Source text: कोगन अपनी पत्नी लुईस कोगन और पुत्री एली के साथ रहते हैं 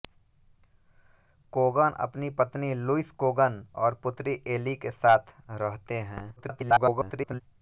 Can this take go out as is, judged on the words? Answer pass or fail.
fail